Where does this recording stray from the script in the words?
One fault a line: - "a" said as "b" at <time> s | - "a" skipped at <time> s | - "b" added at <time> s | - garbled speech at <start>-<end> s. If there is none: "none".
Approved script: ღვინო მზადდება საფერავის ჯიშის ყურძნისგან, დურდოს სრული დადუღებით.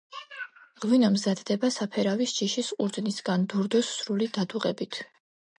none